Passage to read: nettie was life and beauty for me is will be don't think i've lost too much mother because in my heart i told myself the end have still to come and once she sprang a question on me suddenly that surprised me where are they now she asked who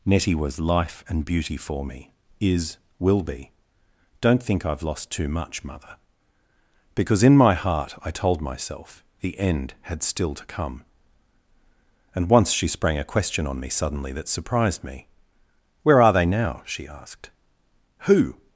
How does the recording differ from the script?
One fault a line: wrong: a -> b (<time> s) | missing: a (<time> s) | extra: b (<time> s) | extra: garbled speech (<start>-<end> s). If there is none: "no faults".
wrong: have -> had (9.8 s)